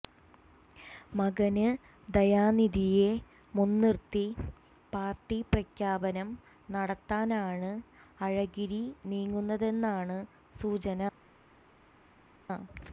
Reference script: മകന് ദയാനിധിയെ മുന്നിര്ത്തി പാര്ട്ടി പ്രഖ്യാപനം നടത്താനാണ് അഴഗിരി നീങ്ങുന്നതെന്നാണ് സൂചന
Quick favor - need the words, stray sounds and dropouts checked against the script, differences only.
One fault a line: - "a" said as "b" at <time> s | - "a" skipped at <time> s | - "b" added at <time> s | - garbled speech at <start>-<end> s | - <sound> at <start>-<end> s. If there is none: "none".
none